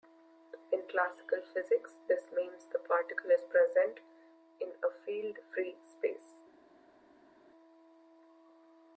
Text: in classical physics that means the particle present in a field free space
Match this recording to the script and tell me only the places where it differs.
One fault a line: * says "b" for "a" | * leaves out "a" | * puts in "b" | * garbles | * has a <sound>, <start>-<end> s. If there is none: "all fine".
* says "this" for "that"
* puts in "is"